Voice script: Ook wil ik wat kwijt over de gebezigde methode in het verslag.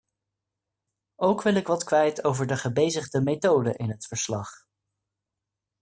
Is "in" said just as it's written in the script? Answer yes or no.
yes